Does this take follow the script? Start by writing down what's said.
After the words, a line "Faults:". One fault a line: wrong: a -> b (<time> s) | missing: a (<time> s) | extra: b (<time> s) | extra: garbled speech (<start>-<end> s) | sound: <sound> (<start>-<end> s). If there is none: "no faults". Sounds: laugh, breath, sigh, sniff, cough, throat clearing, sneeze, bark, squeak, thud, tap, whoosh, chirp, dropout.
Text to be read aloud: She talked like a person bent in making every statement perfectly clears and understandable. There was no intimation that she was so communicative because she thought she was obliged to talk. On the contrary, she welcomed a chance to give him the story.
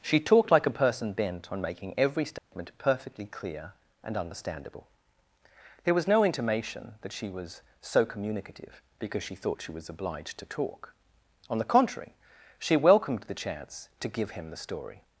She talked like a person bent on making every statement perfectly clear and understandable. There was no intimation that she was so communicative because she thought she was obliged to talk. On the contrary, she welcomed the chance to give him the story.
Faults:
wrong: in -> on (1.5 s)
sound: dropout (2.4-2.5 s)
wrong: clears -> clear (3.3 s)
wrong: a -> the (13.2 s)